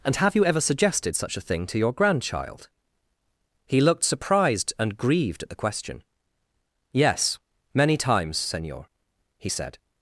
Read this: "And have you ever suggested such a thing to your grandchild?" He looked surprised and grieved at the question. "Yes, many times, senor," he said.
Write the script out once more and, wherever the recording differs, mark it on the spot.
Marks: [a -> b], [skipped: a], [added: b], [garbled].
"And have you ever suggested such a thing to your grandchild?" He looked surprised and grieved at the question. "Yes, many times, senor," he said.